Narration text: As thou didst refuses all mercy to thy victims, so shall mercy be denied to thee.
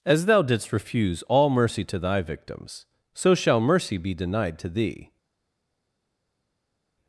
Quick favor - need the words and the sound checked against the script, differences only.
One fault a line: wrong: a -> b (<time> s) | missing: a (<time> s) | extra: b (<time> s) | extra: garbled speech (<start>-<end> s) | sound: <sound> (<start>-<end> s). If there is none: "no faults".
wrong: refuses -> refuse (0.7 s)